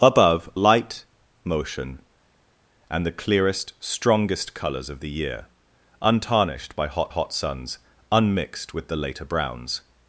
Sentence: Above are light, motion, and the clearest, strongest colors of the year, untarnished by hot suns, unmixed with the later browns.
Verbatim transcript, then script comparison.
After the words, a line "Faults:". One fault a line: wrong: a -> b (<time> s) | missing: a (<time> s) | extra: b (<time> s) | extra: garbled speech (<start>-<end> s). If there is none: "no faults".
Above light, motion, and the clearest, strongest colors of the year, untarnished by hot hot suns, unmixed with the later browns.
Faults:
missing: are (0.5 s)
extra: hot (7.1 s)